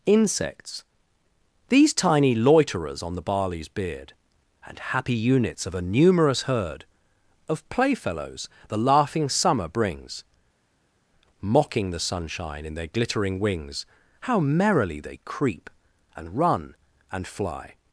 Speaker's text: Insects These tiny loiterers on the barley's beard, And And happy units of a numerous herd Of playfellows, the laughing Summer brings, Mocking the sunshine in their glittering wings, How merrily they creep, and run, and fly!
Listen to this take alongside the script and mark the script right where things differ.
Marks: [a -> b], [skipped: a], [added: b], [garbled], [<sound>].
Insects These tiny loiterers on the barley's beard, And [skipped: And] happy units of a numerous herd Of playfellows, the laughing Summer brings, Mocking the sunshine in their glittering wings, How merrily they creep, and run, and fly!